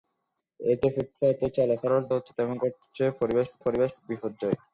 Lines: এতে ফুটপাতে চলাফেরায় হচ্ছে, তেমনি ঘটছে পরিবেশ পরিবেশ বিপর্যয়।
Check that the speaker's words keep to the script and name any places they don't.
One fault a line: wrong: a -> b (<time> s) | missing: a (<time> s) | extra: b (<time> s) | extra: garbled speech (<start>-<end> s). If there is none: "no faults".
no faults